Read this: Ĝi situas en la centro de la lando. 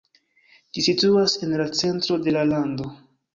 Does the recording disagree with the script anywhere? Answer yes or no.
no